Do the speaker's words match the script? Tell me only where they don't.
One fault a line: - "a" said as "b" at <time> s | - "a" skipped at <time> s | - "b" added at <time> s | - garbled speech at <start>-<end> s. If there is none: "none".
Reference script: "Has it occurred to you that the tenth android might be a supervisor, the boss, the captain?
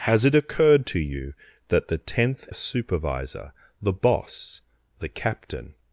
- "android might be" skipped at 2.5 s